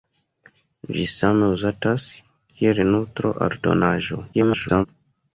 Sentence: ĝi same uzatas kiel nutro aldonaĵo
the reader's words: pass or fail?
fail